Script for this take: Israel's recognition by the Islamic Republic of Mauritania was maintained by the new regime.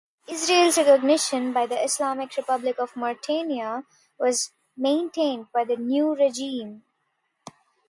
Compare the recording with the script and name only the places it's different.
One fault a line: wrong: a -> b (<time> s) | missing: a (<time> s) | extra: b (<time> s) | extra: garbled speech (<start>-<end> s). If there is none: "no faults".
no faults